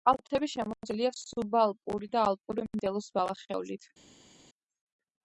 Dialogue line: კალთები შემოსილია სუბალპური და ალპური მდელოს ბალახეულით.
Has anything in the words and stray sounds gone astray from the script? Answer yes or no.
no